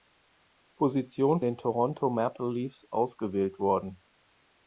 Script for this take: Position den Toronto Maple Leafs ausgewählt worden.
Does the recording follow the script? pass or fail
pass